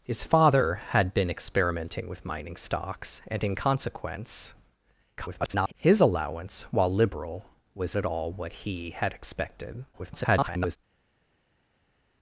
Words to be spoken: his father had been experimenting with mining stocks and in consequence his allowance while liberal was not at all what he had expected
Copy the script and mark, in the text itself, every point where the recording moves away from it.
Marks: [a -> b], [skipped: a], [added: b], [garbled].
his father had been experimenting with mining stocks and in consequence [garbled] his allowance while liberal was [skipped: not] at all what he had expected [garbled]